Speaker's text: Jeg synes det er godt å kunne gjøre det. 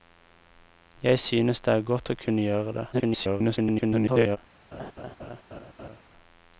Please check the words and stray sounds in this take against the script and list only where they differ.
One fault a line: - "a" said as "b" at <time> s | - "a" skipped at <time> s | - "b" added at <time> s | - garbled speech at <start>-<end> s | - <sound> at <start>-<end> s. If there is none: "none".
- garbled speech at 2.9-4.4 s
- laugh at 4.7-6.0 s